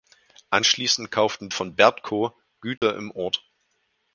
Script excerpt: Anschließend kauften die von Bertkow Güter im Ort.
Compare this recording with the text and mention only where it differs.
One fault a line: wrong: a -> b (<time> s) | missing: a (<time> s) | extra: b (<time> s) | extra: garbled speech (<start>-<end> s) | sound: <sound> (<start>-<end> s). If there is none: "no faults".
missing: die (1.5 s)
sound: dropout (2.8-2.8 s)